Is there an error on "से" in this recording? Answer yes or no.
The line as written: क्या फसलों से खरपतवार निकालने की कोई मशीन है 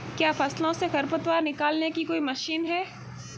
no